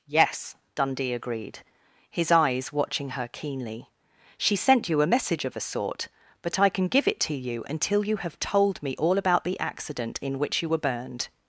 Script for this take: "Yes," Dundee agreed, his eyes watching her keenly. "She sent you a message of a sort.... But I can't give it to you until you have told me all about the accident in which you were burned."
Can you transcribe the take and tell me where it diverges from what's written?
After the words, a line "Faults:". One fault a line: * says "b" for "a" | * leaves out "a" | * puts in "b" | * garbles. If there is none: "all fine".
"Yes," Dundee agreed, his eyes watching her keenly. "She sent you a message of a sort.... But I can give it to you until you have told me all about the accident in which you were burned."
Faults:
* says "can" for "can't"